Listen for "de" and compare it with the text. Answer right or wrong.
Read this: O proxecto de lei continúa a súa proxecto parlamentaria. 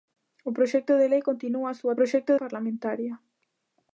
right